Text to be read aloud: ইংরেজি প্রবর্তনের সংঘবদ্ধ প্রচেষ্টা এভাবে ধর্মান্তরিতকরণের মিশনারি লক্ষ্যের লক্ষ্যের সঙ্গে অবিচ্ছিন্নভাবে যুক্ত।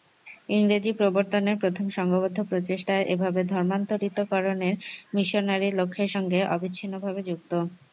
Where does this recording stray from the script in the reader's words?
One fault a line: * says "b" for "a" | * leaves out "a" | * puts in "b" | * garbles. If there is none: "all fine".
* puts in "প্রথম"
* leaves out "লক্ষ্যের"